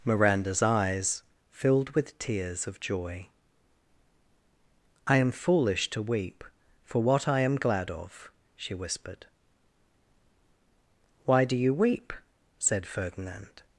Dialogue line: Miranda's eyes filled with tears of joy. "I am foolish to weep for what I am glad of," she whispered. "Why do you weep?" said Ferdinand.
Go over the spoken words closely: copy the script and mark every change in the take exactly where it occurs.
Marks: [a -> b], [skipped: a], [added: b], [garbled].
Miranda's eyes filled with tears of joy. "I am foolish to weep for what I am glad of," she whispered. "Why do you weep?" said Ferdinand.